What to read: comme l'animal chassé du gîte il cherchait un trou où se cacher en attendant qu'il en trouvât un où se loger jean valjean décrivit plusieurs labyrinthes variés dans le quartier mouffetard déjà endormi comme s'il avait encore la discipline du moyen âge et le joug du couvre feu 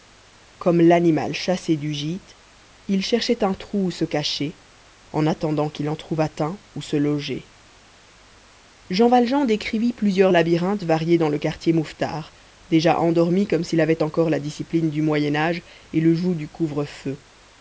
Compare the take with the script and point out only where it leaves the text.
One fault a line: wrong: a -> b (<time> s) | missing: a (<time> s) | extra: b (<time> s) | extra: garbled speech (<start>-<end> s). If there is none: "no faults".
no faults